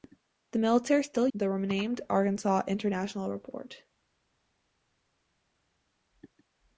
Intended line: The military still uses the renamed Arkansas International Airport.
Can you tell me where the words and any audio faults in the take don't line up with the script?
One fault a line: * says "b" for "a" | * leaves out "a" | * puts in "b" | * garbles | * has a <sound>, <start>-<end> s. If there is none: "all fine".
* leaves out "uses"